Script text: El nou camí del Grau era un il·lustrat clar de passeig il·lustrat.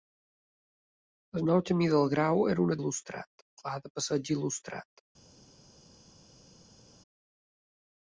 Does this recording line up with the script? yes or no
yes